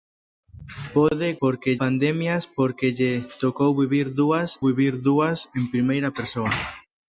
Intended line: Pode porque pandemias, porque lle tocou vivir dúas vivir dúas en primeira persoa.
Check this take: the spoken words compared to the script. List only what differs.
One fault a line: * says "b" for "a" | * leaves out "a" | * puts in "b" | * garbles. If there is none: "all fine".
all fine